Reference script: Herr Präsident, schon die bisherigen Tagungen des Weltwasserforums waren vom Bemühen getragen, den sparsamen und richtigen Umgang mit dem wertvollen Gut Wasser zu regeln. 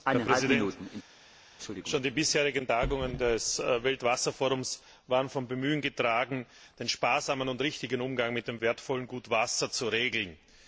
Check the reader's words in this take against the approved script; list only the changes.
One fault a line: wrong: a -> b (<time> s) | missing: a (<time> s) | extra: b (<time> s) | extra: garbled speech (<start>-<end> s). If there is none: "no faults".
no faults